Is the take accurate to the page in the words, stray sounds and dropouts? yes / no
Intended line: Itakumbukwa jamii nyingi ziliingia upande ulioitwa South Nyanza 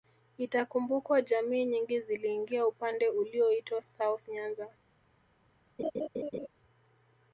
no